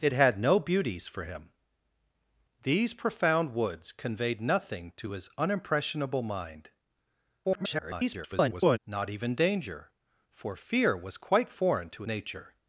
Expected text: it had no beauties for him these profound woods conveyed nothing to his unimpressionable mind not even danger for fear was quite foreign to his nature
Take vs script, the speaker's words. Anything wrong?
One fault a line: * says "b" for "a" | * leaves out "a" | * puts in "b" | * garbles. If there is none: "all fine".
* garbles
* leaves out "his"